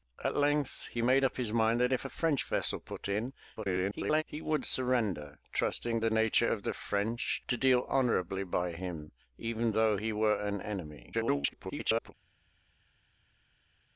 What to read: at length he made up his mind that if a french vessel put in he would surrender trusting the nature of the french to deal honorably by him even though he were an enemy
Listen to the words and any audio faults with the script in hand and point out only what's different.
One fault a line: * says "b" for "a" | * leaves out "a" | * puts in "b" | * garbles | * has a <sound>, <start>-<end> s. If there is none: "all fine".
* garbles
* garbles